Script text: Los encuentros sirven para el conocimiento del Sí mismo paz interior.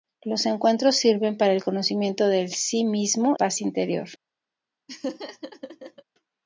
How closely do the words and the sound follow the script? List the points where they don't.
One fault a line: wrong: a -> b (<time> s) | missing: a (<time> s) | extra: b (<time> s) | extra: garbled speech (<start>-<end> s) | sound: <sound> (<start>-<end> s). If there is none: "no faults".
sound: laugh (4.9-6.0 s)